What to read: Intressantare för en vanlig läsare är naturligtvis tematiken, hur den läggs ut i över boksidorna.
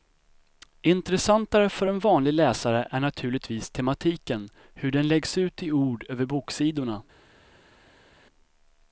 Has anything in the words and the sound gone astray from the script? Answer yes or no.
yes